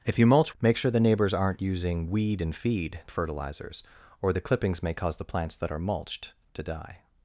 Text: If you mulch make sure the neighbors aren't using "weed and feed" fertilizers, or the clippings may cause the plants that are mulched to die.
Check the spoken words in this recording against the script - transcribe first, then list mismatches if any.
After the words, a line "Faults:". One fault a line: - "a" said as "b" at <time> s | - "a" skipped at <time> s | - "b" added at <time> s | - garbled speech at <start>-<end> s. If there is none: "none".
If you mulch make sure the neighbors aren't using "weed and feed" fertilizers, or the clippings may cause the plants that are mulched to die.
Faults:
none